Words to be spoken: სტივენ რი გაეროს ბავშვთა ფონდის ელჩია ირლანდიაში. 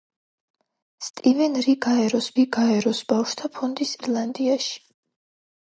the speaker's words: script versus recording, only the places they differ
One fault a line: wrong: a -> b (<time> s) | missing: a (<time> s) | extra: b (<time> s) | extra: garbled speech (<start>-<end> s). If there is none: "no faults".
extra: რი გაეროს (2.3 s)
missing: ელჩია (3.9 s)